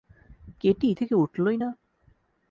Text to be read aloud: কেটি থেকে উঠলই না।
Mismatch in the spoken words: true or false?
false